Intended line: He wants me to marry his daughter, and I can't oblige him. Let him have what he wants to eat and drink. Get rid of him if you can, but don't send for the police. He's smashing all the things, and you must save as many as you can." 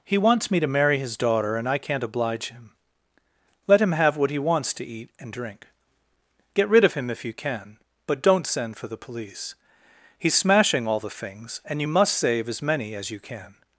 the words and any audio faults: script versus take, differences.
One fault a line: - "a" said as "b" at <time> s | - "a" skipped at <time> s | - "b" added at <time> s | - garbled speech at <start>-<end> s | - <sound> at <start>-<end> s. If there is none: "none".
none